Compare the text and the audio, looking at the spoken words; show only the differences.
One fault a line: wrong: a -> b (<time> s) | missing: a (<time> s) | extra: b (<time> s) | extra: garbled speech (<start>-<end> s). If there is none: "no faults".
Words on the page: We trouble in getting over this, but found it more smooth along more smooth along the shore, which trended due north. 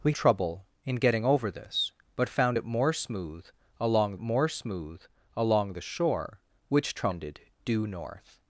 no faults